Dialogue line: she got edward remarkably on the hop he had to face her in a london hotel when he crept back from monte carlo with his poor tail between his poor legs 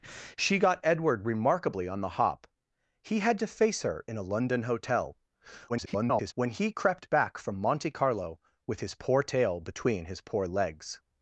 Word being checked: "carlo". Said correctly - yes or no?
yes